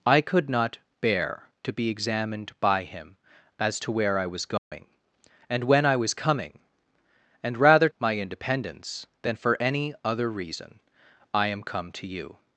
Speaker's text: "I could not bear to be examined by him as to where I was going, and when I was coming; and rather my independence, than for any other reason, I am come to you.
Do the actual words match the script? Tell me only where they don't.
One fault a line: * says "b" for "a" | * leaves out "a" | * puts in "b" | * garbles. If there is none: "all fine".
all fine